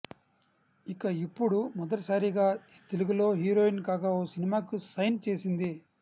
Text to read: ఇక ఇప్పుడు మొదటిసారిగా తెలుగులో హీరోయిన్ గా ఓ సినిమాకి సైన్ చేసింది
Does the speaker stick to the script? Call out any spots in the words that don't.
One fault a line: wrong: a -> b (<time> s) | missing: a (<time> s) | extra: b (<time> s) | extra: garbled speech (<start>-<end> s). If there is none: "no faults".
no faults